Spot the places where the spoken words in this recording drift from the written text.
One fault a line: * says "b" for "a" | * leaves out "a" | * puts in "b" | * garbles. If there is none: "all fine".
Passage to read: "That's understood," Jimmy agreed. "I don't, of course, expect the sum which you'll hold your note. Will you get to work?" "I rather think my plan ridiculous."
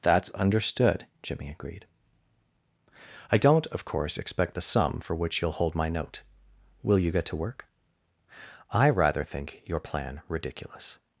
* puts in "for"
* says "my" for "your"
* says "your" for "my"